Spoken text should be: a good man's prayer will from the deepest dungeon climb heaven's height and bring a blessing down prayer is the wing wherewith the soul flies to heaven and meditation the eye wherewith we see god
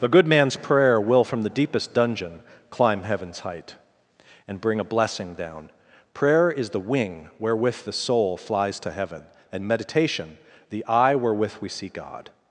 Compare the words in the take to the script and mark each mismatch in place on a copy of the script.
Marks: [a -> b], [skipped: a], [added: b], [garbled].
[a -> the] good man's prayer will from the deepest dungeon climb heaven's height and bring a blessing down prayer is the wing wherewith the soul flies to heaven and meditation the eye wherewith we see god